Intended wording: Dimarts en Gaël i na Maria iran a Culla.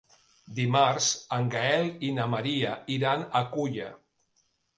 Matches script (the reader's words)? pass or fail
pass